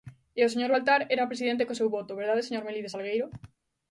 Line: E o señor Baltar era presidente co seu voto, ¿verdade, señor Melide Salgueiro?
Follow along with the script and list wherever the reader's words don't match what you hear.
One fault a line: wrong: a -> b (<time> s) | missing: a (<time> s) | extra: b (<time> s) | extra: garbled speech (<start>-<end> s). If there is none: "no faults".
no faults